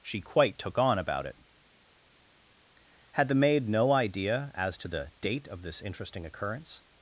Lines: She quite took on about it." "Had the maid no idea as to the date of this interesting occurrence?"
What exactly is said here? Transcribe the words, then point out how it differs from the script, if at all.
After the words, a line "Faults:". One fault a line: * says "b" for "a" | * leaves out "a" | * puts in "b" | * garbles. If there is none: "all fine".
She quite took on about it." "Had the maid no idea as to the date of this interesting occurrence?"
Faults:
all fine